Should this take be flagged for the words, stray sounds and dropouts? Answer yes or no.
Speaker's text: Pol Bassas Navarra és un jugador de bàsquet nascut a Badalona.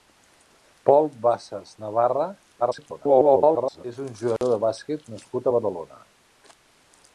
yes